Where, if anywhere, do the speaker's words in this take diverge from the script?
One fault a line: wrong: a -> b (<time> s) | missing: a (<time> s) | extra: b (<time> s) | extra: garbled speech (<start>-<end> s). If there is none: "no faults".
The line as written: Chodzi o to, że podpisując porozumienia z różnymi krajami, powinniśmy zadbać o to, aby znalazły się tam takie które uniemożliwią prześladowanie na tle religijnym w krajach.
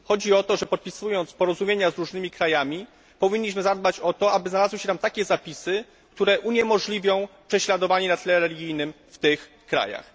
extra: zapisy (5.2 s)
extra: tych (9.2 s)